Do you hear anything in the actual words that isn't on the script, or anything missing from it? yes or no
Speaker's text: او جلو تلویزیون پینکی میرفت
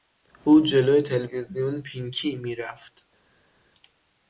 no